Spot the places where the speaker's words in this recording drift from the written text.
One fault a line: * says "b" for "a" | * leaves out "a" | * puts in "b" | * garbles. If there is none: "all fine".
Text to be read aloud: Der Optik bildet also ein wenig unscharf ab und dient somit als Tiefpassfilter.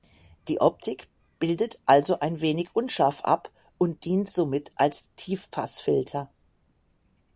* says "Die" for "Der"